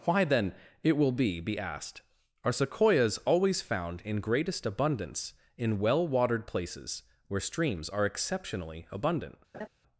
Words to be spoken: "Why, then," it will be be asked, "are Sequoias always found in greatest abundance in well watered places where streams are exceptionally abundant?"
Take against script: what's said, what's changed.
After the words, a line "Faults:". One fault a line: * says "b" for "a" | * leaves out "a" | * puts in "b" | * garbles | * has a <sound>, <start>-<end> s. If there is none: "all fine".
"Why, then," it will be be asked, "are Sequoias always found in greatest abundance in well watered places where streams are exceptionally abundant?"
Faults:
* has a laugh, 9.5-9.7 s